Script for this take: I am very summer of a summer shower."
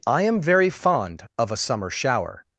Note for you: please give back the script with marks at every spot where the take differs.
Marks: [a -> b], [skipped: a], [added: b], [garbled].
I am very [summer -> fond] of a summer shower."